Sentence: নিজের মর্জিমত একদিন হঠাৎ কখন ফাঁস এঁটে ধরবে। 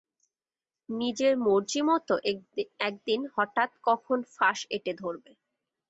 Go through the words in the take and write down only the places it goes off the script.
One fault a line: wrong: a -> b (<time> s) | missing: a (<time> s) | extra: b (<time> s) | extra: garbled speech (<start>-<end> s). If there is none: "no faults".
no faults